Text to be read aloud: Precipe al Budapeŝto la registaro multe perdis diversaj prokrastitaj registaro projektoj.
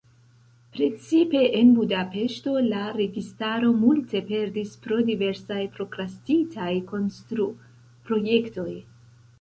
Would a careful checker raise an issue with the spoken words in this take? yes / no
yes